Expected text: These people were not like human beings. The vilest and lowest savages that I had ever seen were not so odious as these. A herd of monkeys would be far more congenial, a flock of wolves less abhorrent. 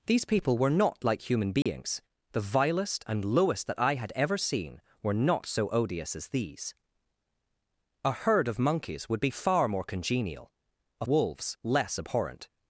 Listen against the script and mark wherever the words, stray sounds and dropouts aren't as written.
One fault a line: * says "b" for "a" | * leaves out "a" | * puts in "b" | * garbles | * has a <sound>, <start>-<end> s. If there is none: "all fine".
* has a dropout, 1.6-1.7 s
* leaves out "savages"
* leaves out "flock of"